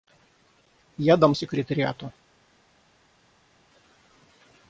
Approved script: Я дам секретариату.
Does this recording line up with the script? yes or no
yes